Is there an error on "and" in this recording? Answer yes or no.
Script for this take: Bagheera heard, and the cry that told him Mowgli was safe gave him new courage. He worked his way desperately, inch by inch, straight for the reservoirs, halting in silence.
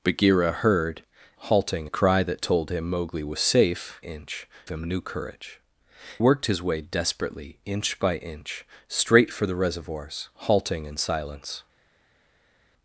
yes